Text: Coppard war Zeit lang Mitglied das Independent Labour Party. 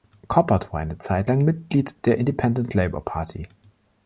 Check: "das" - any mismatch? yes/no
yes